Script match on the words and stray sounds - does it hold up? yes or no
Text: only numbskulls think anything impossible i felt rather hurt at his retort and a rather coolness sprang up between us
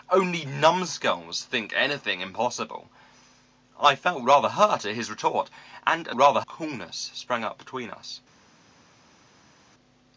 yes